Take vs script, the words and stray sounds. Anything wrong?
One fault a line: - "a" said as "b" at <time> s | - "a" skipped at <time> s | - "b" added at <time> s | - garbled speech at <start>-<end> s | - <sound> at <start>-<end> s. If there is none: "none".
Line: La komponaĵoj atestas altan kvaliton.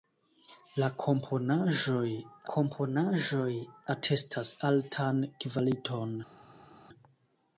- "komponaĵoj" added at 2.5 s